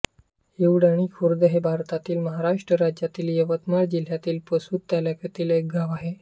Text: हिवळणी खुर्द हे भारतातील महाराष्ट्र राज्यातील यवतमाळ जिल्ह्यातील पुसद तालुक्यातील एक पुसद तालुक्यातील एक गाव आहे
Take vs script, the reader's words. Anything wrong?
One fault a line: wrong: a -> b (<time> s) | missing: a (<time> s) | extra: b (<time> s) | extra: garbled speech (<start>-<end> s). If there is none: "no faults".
missing: पुसद तालुक्यातील एक (5.7 s)